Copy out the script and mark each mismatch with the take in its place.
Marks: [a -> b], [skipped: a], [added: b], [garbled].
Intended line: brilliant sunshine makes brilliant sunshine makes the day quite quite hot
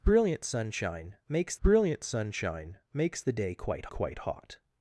brilliant sunshine makes brilliant sunshine makes the day quite quite hot